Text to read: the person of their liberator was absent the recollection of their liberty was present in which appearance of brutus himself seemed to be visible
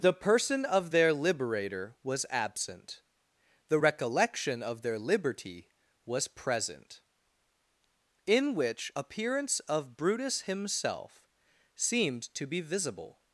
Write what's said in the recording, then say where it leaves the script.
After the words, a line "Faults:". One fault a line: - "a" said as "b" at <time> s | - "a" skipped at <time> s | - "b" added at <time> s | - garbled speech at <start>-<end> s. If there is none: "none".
the person of their liberator was absent the recollection of their liberty was present in which appearance of brutus himself seemed to be visible
Faults:
none